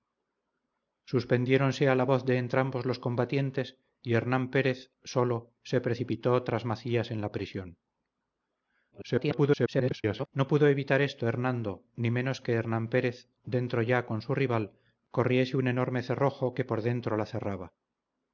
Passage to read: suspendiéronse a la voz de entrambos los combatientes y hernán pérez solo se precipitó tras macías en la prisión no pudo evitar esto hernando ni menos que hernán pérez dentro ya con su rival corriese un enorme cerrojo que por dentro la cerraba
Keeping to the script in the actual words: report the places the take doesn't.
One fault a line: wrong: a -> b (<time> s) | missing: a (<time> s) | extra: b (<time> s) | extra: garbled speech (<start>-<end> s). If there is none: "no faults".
extra: garbled speech (8.9-10.3 s)